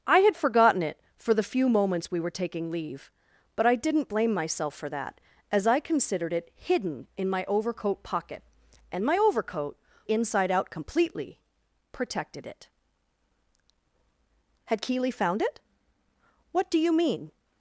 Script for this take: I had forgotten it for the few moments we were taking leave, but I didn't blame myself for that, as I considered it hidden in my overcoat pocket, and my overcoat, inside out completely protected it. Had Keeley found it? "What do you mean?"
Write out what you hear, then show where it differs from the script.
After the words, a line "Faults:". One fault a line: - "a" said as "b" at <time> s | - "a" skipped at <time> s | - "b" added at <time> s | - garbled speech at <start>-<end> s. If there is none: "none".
I had forgotten it for the few moments we were taking leave, but I didn't blame myself for that, as I considered it hidden in my overcoat pocket, and my overcoat, inside out completely protected it. Had Keeley found it? "What do you mean?"
Faults:
none